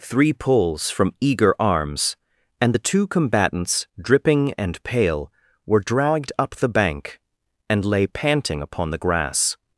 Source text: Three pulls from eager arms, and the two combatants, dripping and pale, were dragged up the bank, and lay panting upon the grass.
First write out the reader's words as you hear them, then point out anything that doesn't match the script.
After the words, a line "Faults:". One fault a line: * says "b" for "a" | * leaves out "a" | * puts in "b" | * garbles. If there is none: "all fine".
Three pulls from eager arms, and the two combatants, dripping and pale, were dragged up the bank, and lay panting upon the grass.
Faults:
all fine